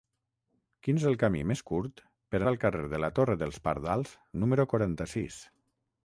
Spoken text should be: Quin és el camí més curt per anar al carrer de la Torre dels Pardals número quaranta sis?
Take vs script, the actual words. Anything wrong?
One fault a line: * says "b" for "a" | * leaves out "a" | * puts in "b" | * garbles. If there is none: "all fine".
* leaves out "anar"